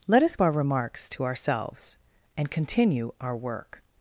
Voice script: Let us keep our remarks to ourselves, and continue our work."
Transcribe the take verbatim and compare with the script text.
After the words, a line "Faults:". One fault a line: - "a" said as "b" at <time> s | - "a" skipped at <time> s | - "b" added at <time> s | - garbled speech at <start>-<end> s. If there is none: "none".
Let us our remarks to ourselves, and continue our work."
Faults:
- "keep" skipped at 0.3 s